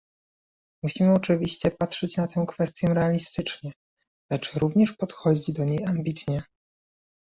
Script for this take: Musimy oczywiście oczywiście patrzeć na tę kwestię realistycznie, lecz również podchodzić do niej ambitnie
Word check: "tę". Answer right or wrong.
right